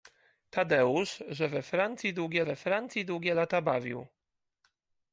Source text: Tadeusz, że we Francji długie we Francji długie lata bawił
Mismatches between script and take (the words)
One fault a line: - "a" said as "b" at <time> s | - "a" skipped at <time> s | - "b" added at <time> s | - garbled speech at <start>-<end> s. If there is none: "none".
none